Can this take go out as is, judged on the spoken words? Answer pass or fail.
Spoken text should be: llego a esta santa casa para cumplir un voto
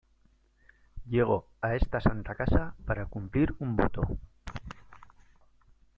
pass